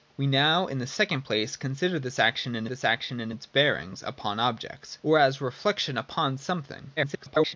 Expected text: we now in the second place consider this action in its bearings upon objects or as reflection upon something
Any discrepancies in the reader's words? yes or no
yes